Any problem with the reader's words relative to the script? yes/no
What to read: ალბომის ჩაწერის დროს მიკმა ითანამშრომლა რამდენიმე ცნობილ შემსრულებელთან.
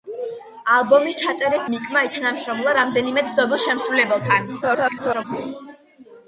yes